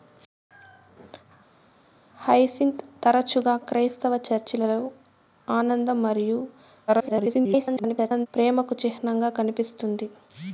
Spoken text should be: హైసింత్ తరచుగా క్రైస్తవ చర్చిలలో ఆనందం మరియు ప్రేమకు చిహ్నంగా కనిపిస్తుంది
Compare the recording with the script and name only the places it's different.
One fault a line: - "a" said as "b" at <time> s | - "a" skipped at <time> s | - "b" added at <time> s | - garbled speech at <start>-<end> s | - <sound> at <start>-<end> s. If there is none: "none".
- garbled speech at 6.9-8.3 s